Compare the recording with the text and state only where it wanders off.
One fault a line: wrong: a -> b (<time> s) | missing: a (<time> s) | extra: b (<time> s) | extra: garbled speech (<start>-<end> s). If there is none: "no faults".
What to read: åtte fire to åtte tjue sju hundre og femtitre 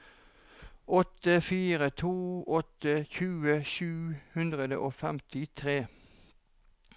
no faults